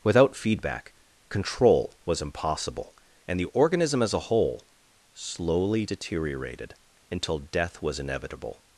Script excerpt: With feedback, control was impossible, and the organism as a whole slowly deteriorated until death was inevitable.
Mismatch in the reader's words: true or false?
true